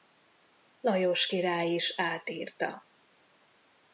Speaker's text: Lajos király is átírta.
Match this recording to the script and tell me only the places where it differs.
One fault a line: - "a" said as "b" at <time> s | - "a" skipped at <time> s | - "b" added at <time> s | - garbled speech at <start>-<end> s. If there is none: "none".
none